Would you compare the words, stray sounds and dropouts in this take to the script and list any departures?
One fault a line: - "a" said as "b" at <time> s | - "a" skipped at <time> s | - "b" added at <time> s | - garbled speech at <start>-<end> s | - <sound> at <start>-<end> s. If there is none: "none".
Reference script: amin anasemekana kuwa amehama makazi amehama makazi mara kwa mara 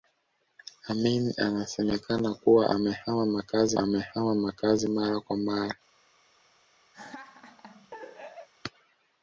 - laugh at 6.9-8.5 s